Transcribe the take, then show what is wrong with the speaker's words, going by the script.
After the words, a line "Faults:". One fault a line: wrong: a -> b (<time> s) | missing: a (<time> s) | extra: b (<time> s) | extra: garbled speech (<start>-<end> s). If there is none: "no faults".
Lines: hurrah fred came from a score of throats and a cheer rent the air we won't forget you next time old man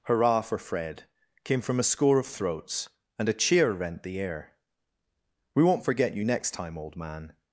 hurrah for fred came from a score of throats and a cheer rent the air we won't forget you next time old man
Faults:
extra: for (0.4 s)